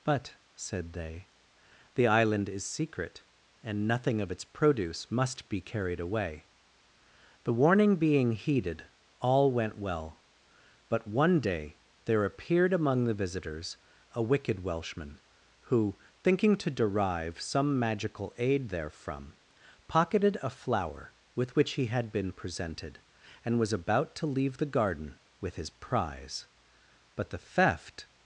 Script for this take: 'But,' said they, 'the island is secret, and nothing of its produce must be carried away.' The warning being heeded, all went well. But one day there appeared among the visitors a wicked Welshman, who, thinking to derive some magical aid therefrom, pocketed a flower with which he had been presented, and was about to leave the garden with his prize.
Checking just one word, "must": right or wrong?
right